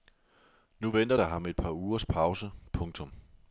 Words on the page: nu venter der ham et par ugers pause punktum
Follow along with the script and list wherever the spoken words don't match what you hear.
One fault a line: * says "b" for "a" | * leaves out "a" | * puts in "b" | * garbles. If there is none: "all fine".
all fine